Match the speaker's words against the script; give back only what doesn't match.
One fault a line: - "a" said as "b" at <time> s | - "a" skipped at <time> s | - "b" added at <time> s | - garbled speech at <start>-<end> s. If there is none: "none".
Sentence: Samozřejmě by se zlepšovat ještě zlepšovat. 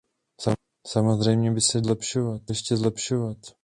none